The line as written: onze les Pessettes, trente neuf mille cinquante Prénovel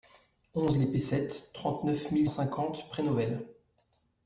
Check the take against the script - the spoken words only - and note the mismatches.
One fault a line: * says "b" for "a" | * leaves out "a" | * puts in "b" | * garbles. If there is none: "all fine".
all fine